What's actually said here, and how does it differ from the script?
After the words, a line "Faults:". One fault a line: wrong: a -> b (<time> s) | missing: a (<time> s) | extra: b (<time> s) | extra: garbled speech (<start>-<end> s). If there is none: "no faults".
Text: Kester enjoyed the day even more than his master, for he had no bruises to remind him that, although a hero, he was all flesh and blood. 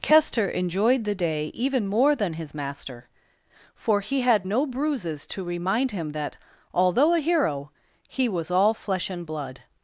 Kester enjoyed the day even more than his master, for he had no bruises to remind him that, although a hero, he was all flesh and blood.
Faults:
no faults